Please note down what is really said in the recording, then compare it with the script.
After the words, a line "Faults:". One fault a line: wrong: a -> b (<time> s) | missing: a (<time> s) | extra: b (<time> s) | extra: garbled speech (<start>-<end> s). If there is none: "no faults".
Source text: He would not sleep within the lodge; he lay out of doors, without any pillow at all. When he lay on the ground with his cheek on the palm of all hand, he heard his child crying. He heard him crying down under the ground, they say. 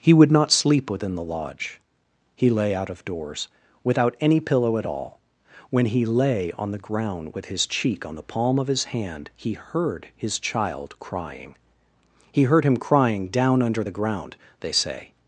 He would not sleep within the lodge; he lay out of doors, without any pillow at all. When he lay on the ground with his cheek on the palm of his hand, he heard his child crying. He heard him crying down under the ground, they say.
Faults:
wrong: all -> his (8.7 s)